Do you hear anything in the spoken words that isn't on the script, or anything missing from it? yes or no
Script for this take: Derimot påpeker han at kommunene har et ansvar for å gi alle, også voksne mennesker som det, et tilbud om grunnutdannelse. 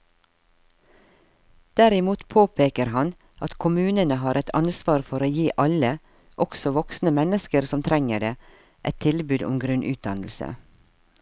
yes